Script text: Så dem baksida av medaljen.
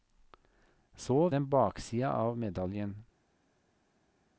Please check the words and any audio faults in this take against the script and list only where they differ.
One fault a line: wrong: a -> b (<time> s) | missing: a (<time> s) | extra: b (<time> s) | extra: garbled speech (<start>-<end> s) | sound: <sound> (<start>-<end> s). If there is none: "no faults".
no faults